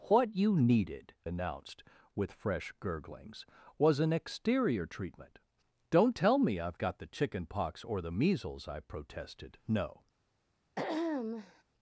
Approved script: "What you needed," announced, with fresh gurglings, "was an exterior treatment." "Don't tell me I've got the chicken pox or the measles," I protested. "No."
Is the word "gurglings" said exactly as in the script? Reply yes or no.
yes